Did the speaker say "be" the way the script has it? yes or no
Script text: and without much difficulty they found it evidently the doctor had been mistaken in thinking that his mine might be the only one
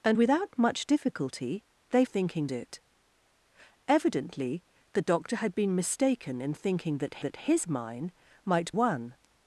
no